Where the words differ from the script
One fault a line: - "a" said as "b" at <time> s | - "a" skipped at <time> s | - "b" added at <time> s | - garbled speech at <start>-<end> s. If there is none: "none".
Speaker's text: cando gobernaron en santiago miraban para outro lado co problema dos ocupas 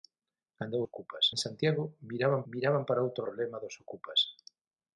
- "gobernaron" said as "ocupas" at 0.9 s
- "miraban" added at 2.5 s
- "lado co" skipped at 3.2 s